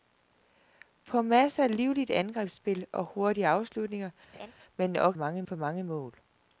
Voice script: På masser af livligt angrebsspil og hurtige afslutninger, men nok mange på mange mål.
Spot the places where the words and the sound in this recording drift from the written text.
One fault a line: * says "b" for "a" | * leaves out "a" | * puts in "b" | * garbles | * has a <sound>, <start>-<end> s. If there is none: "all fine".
* has a laugh, 4.3-4.5 s